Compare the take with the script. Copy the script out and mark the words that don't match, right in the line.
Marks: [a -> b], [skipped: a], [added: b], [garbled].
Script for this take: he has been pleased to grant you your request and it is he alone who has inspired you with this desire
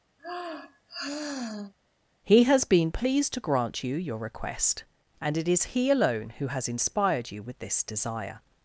he has been pleased to grant you your request and it is he alone who has inspired you with this desire